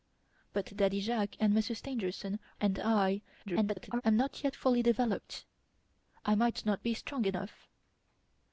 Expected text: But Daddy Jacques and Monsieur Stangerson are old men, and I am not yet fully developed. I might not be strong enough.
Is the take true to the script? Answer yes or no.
no